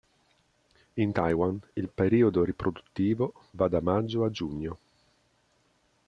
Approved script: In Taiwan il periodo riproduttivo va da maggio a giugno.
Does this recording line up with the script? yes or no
yes